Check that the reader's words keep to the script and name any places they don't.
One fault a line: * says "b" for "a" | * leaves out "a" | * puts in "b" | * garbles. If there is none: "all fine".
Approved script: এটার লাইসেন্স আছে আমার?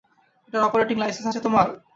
* puts in "অপারেটিং"
* says "তোমার" for "আমার"